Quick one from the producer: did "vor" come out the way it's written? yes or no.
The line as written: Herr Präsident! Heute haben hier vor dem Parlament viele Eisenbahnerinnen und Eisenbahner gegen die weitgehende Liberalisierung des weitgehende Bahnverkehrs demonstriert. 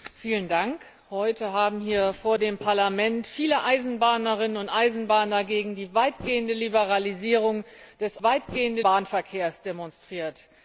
yes